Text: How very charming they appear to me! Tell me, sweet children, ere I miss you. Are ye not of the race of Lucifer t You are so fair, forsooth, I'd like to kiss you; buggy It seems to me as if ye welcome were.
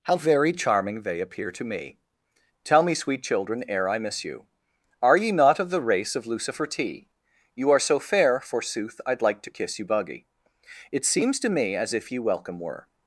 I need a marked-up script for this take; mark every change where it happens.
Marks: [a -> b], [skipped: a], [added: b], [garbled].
How very charming they appear to me! Tell me, sweet children, ere I miss you. Are ye not of the race of Lucifer t You are so fair, forsooth, I'd like to kiss you; buggy It seems to me as if ye welcome were.